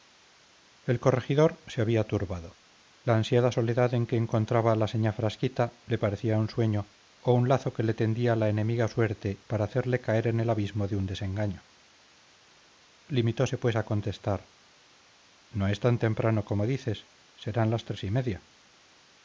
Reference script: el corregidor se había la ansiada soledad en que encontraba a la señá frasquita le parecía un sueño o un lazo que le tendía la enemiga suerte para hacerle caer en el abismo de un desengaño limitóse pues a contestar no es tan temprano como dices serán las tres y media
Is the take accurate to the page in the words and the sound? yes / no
no